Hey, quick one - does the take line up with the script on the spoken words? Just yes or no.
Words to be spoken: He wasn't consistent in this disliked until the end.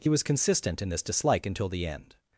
no